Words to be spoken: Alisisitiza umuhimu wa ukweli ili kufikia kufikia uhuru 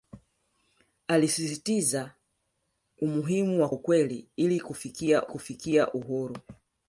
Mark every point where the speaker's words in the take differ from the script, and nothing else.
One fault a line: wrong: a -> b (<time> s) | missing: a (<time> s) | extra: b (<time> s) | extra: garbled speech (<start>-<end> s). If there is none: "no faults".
no faults